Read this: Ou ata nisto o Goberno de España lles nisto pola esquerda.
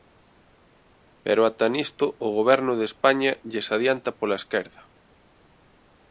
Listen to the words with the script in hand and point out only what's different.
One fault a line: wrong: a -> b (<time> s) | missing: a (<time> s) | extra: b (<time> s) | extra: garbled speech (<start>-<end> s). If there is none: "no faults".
wrong: Ou -> Pero (1.2 s)
wrong: nisto -> adianta (3.8 s)